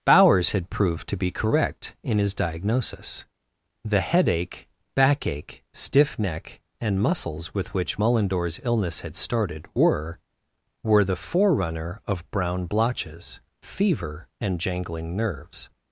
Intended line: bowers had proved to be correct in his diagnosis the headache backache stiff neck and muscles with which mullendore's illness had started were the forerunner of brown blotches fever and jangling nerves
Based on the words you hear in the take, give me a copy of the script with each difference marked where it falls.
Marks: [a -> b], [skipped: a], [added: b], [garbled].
bowers had proved to be correct in his diagnosis the headache backache stiff neck and muscles with which mullendore's illness had started were [added: were] the forerunner of brown blotches fever and jangling nerves